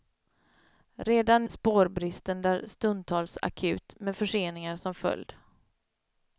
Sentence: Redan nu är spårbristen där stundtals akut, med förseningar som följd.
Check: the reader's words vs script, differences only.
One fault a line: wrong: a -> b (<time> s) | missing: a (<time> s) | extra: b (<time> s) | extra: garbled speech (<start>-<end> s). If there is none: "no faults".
missing: nu är (1.4 s)